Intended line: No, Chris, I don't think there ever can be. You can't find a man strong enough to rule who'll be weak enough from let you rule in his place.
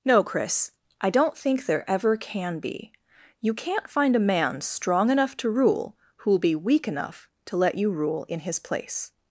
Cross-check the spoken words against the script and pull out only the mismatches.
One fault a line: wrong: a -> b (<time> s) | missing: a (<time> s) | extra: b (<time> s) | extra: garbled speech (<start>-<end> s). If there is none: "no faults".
wrong: from -> to (7.5 s)